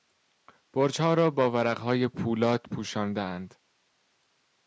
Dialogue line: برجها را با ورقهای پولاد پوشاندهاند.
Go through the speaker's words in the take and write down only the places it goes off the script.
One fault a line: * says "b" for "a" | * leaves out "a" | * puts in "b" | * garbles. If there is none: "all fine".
all fine